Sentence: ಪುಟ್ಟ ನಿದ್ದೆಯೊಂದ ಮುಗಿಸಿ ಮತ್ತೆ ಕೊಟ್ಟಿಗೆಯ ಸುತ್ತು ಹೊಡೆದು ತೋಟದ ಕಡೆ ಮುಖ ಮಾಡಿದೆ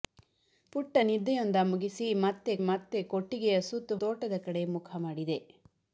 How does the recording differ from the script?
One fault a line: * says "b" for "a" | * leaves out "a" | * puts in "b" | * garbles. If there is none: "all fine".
* puts in "ಮತ್ತೆ"
* leaves out "ಹೊಡೆದು"